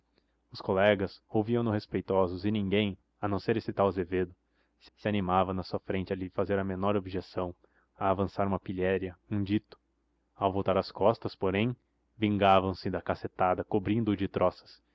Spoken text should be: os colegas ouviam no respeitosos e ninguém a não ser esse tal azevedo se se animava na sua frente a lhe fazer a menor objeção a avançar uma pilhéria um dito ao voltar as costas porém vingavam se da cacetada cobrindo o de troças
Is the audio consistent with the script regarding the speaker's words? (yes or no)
yes